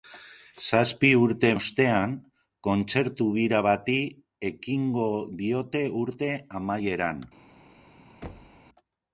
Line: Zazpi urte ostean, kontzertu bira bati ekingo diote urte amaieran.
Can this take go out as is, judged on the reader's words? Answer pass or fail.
pass